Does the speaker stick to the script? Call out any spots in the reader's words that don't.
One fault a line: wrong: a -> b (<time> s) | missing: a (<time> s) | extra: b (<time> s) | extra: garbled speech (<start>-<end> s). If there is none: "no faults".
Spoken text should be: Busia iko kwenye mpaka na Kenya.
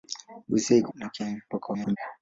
missing: kwenye mpaka (0.9 s)
extra: garbled speech (1.5-2.0 s)